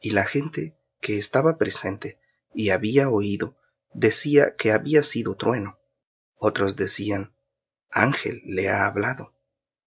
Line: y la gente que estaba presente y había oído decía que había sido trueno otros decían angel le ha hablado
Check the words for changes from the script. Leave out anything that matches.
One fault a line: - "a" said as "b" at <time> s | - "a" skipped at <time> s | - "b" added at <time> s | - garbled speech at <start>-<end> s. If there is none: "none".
none